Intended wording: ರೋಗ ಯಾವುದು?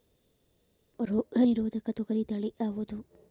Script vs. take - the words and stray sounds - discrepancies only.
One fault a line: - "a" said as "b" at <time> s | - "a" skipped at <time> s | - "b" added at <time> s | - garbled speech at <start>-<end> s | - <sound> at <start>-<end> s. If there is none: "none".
- "ನಿರೋಧಕ ತೊಗರಿ ತಳಿ" added at 1.4 s